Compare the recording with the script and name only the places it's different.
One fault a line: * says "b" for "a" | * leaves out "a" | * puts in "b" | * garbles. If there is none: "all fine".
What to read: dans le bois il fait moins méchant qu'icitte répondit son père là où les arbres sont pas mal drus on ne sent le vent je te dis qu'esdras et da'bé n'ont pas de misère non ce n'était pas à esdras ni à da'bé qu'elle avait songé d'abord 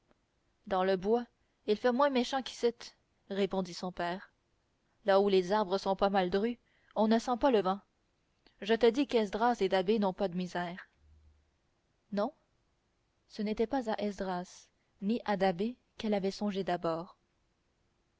* puts in "pas"